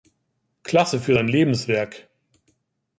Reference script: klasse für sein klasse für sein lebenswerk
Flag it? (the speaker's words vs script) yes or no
yes